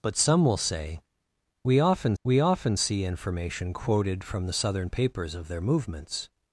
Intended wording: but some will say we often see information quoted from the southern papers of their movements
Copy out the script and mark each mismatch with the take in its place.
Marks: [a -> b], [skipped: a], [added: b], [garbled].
but some will say we often [added: we often] see information quoted from the southern papers of their movements